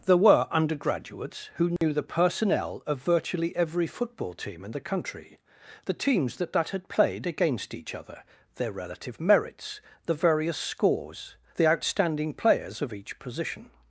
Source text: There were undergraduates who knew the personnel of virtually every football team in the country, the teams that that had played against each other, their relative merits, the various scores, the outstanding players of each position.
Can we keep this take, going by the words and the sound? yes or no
no